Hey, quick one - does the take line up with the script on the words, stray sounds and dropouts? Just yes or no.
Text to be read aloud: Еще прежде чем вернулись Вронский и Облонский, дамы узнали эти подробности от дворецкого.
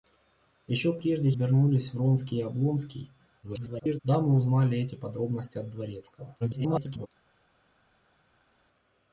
no